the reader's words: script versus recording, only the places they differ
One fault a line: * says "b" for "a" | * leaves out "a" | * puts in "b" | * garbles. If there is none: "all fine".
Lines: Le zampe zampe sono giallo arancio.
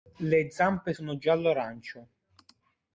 * leaves out "zampe"